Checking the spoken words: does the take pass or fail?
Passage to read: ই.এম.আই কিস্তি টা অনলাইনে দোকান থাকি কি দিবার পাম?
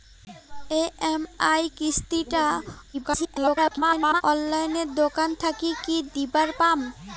fail